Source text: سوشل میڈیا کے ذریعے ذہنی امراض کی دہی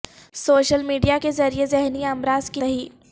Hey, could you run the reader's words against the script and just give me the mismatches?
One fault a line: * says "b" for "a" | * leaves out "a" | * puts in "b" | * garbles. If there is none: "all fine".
all fine